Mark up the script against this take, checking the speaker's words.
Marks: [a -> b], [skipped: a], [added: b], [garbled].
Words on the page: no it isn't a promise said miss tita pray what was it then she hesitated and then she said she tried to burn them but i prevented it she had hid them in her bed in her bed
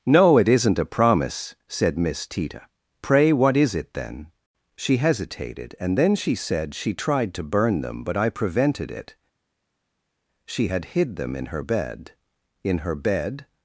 no it isn't a promise said miss tita pray what [was -> is] it then she hesitated and then she said she tried to burn them but i prevented it she had hid them in her bed in her bed